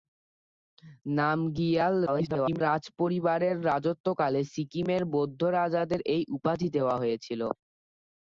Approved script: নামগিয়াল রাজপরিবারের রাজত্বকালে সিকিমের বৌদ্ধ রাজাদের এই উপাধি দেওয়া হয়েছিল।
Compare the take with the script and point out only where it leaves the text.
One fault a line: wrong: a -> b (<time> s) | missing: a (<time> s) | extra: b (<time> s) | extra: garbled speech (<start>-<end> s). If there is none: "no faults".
extra: garbled speech (2.1-2.6 s)